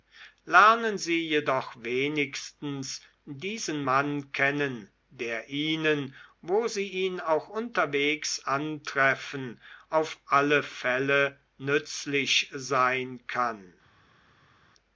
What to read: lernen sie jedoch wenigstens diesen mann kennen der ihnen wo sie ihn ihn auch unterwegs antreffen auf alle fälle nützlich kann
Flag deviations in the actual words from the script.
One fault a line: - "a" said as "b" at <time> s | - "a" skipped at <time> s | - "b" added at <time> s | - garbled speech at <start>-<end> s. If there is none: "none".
- "ihn" skipped at 7.2 s
- "sein" added at 12.5 s